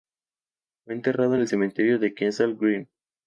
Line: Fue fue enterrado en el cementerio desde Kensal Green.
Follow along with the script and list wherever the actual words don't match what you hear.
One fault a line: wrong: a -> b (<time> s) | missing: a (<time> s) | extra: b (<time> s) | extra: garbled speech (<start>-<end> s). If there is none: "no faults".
missing: fue (0.9 s)
wrong: desde -> de (2.0 s)